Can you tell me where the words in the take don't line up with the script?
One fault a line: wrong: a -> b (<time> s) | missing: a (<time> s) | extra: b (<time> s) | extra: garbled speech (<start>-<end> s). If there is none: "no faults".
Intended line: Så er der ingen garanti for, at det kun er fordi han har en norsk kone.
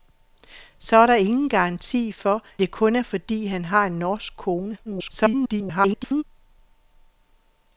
missing: at (2.4 s)
extra: garbled speech (4.8-6.2 s)